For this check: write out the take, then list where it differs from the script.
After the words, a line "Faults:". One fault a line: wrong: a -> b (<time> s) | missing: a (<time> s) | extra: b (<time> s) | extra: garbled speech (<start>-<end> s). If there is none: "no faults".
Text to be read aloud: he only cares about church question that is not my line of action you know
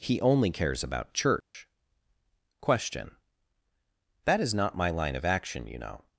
he only cares about church question that is not my line of action you know
Faults:
no faults